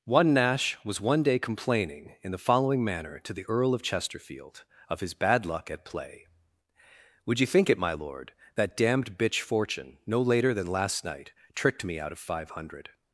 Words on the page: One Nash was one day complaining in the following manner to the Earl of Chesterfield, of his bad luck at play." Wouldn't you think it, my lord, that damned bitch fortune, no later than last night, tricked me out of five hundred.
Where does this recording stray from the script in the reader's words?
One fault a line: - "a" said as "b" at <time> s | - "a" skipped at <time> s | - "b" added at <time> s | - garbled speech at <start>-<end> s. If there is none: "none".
- "Wouldn't" said as "Would" at 7.3 s